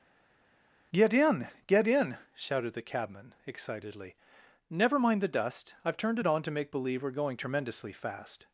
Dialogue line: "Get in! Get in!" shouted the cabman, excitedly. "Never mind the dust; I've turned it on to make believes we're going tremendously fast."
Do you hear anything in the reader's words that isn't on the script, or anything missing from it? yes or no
yes